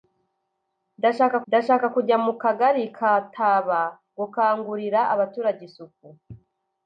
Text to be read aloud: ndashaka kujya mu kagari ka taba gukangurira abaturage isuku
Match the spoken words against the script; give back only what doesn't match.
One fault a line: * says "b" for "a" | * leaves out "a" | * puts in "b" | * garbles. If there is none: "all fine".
* puts in "ndashaka"